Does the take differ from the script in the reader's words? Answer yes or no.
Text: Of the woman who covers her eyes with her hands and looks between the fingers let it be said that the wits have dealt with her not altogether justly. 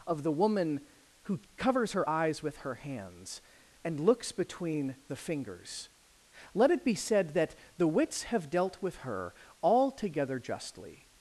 yes